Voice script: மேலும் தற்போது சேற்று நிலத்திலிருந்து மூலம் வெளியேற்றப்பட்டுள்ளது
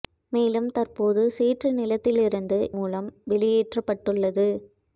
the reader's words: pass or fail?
pass